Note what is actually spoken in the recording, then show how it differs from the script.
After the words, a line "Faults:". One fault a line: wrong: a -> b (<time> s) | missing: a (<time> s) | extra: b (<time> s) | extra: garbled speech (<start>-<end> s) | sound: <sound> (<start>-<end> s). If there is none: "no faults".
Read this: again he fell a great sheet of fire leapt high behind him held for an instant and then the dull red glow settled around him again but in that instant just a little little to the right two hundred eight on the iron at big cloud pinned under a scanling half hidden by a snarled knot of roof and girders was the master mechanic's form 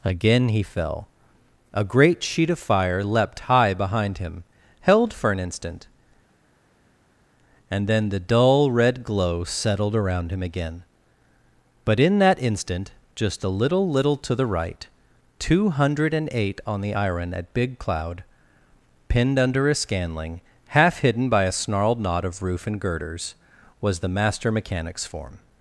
again he fell a great sheet of fire leapt high behind him held for an instant and then the dull red glow settled around him again but in that instant just a little little to the right two hundred eight on the iron at big cloud pinned under a scanling half hidden by a snarled knot of roof and girders was the master mechanic's form
Faults:
no faults